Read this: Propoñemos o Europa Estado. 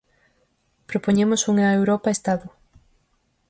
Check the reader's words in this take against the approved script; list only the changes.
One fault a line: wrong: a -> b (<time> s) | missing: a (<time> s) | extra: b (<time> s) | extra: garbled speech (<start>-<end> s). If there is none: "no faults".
wrong: o -> unha (1.5 s)